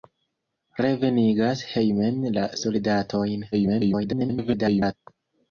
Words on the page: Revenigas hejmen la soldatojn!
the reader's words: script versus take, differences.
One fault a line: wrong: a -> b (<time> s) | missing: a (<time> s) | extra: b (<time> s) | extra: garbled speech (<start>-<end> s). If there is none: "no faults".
extra: garbled speech (3.5-4.9 s)